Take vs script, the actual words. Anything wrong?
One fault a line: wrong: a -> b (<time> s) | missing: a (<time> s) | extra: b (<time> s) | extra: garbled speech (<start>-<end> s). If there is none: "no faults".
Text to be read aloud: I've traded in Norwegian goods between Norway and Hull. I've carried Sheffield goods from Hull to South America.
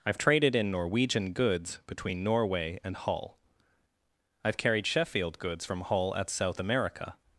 wrong: to -> at (6.1 s)